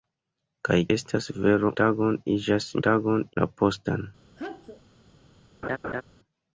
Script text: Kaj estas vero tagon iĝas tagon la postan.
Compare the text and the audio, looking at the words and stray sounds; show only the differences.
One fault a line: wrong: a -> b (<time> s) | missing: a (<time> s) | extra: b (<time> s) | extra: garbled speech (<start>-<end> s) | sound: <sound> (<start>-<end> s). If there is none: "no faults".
sound: sneeze (4.4-4.8 s)
sound: laugh (5.6-6.0 s)